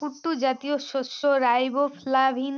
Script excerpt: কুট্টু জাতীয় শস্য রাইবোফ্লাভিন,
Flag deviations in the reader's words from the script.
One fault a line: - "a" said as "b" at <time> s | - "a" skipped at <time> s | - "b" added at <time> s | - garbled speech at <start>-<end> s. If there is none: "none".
none